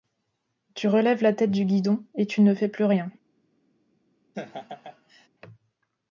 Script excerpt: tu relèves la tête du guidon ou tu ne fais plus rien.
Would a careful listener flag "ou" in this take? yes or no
yes